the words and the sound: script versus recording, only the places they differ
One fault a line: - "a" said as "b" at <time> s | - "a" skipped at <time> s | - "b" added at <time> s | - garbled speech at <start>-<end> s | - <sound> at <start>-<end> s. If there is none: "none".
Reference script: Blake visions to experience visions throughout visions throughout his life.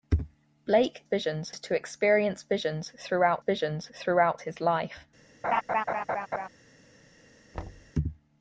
- laugh at 5.4-6.5 s
- thud at 7.5-7.9 s